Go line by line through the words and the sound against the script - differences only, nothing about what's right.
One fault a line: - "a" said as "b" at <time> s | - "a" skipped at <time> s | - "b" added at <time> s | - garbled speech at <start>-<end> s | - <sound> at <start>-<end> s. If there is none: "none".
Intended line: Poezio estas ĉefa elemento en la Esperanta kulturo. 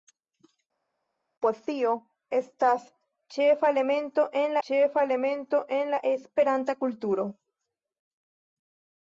- "ĉefa elemento en" added at 4.7 s